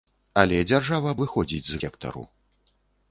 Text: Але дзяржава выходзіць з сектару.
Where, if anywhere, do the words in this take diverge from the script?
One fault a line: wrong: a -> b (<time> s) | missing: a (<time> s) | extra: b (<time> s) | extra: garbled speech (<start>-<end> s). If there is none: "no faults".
no faults